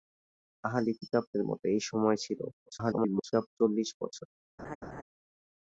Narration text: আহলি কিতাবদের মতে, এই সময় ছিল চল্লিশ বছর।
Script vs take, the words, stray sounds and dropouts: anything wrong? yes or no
yes